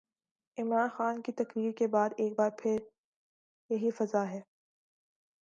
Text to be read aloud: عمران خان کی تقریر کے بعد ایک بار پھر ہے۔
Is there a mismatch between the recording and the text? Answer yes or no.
yes